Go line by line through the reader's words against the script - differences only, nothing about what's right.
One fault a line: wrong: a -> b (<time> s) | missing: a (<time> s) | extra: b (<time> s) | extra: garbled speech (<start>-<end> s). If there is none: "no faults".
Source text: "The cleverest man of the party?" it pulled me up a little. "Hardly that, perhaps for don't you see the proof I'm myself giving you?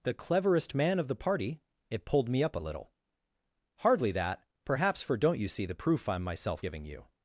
no faults